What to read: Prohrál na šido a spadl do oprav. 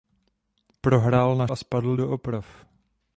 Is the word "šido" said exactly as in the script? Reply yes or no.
no